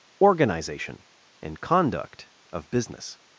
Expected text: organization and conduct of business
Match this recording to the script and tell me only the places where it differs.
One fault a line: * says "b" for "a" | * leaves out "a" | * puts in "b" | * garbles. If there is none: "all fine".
all fine